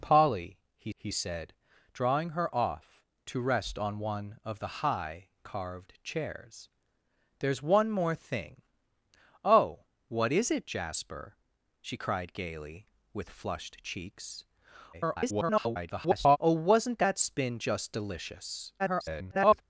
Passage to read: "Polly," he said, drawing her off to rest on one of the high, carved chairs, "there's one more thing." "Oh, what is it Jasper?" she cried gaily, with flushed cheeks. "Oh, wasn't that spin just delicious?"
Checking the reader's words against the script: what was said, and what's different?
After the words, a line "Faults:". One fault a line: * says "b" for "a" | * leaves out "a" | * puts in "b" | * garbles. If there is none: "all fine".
"Polly," he he said, drawing her off to rest on one of the high, carved chairs, "there's one more thing." "Oh, what is it Jasper?" she cried gaily, with flushed cheeks. [garbled] "Oh, wasn't that spin just delicious?" [garbled]
Faults:
* puts in "he"
* garbles
* garbles